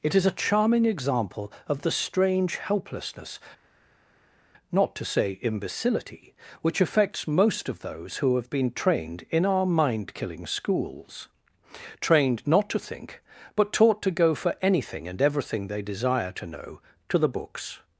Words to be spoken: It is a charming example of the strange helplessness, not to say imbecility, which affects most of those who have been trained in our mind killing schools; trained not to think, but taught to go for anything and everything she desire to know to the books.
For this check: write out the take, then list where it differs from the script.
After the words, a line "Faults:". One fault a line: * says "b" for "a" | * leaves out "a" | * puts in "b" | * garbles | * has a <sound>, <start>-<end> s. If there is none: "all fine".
It is a charming example of the strange helplessness, not to say imbecility, which affects most of those who have been trained in our mind killing schools; trained not to think, but taught to go for anything and everything they desire to know to the books.
Faults:
* says "they" for "she"